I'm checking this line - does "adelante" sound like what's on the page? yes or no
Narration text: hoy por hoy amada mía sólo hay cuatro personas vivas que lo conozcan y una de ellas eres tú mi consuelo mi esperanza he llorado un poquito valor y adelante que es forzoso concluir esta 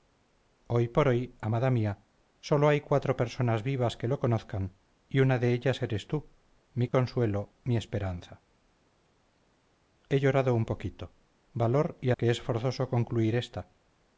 no